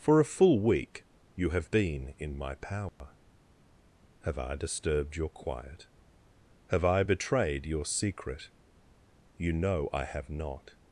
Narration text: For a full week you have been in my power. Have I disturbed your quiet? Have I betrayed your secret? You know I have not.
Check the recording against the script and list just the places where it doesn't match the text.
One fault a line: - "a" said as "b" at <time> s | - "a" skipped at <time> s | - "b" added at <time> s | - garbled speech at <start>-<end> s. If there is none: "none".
none